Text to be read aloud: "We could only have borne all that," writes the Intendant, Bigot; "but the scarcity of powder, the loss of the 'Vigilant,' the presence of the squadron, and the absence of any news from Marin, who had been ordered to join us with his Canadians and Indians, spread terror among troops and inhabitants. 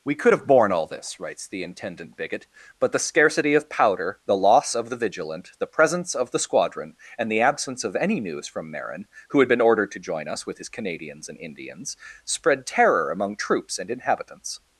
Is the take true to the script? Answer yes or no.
no